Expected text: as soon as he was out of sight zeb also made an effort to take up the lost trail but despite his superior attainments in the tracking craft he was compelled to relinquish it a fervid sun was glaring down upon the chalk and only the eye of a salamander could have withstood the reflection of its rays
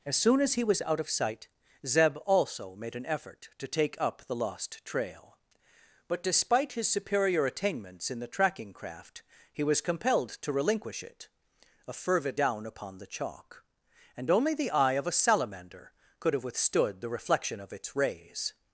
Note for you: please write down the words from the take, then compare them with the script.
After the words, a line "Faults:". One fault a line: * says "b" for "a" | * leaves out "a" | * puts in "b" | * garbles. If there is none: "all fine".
as soon as he was out of sight zeb also made an effort to take up the lost trail but despite his superior attainments in the tracking craft he was compelled to relinquish it a fervid down upon the chalk and only the eye of a salamander could have withstood the reflection of its rays
Faults:
* leaves out "sun was glaring"